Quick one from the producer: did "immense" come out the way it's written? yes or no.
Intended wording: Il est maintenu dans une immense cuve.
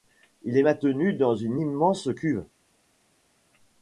yes